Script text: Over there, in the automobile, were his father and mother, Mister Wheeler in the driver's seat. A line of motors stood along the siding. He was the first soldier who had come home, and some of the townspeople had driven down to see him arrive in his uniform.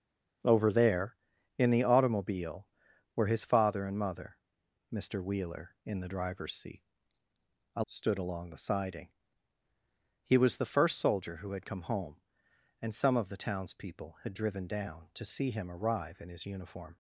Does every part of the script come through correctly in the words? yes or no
no